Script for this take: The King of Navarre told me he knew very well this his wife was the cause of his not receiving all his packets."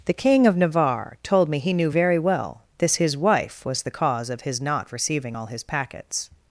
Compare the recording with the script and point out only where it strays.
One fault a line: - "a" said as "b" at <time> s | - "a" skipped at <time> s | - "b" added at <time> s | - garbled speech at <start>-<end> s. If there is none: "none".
none